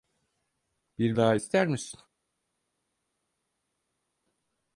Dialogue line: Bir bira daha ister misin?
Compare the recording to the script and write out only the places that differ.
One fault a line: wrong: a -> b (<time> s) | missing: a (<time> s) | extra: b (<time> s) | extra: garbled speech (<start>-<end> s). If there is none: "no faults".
missing: bira (1.2 s)